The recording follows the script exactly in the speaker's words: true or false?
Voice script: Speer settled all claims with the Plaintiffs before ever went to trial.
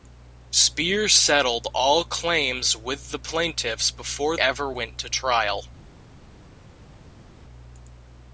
true